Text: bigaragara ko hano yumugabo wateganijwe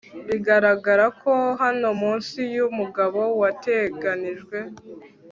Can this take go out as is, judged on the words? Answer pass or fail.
fail